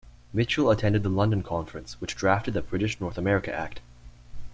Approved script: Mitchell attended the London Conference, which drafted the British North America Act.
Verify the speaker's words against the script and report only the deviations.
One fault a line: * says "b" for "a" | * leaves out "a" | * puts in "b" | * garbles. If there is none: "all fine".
all fine